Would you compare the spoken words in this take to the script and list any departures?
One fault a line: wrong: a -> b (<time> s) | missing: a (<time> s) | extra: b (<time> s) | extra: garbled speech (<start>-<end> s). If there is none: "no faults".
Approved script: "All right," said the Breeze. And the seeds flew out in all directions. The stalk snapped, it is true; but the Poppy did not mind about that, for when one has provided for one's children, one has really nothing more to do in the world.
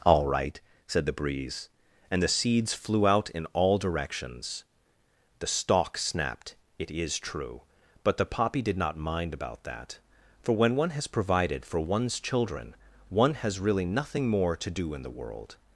no faults